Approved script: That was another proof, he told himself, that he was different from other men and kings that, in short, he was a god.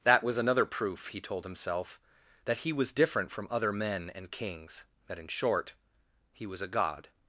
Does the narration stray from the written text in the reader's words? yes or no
no